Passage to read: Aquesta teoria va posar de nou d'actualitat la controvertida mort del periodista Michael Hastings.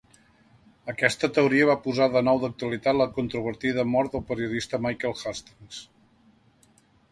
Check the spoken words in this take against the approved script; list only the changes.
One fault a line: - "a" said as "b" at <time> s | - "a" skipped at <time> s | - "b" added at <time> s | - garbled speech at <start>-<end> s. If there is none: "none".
none